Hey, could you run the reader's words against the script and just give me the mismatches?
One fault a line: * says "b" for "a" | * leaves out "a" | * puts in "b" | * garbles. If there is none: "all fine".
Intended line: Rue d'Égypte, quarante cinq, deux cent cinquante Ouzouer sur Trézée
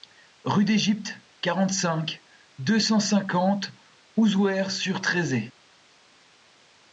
all fine